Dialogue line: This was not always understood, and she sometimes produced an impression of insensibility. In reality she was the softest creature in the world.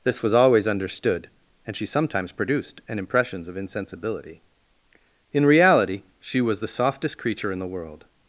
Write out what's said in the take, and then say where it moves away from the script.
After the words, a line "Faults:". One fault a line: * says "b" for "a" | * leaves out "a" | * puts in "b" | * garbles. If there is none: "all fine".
This was always understood, and she sometimes produced an impressions of insensibility. In reality she was the softest creature in the world.
Faults:
* leaves out "not"
* says "impressions" for "impression"